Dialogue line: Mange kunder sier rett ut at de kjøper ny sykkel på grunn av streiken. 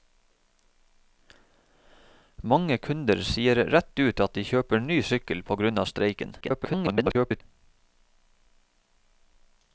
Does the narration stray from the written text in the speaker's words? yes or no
yes